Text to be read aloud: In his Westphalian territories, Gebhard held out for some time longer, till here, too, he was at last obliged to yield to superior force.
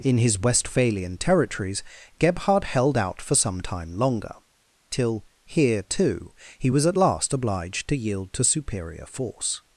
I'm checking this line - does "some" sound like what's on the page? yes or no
yes